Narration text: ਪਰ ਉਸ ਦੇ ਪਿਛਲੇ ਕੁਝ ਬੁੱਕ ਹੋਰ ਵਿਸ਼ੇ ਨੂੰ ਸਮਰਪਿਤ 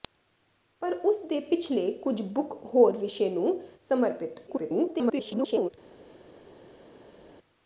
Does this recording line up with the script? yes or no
no